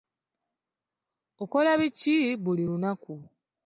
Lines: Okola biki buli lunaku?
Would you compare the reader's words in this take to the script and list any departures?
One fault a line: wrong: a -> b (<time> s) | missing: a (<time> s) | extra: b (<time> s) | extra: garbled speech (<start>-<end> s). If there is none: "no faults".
no faults